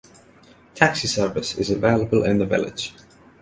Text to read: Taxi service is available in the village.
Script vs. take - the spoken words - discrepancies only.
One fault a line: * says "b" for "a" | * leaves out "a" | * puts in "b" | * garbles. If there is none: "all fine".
all fine